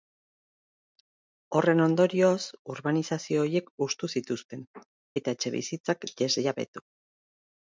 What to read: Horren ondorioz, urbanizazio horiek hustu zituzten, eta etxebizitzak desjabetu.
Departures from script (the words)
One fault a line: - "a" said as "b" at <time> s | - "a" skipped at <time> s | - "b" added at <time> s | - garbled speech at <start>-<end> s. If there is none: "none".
none